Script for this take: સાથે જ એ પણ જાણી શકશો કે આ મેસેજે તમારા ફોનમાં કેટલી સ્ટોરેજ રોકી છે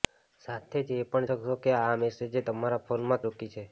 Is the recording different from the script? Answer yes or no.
yes